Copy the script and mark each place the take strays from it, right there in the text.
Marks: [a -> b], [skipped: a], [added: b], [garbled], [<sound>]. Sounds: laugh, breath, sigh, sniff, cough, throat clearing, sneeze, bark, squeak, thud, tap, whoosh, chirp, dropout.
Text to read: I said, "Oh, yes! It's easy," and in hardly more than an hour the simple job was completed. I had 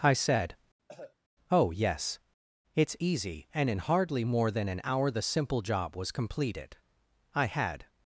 I said, [cough] "Oh, yes! It's easy," and in hardly more than an hour the simple job was completed. I had